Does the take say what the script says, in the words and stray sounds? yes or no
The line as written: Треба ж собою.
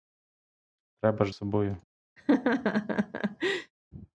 no